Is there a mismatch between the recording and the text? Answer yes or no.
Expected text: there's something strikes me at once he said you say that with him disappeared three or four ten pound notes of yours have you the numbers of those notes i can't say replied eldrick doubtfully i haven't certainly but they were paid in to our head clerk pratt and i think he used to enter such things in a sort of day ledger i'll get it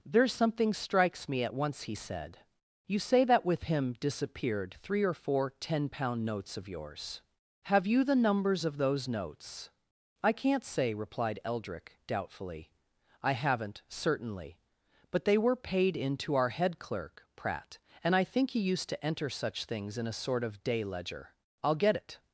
no